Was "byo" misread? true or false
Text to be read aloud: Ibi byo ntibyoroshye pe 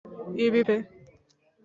true